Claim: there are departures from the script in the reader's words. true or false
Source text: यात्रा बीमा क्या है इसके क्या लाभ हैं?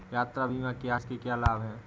true